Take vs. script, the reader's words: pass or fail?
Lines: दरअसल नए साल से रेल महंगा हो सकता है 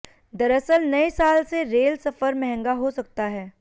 fail